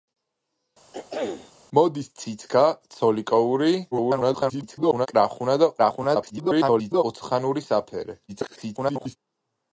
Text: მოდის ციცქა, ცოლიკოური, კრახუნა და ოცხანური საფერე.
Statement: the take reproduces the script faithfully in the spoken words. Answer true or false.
false